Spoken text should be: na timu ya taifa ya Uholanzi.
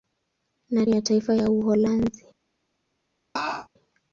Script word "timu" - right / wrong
wrong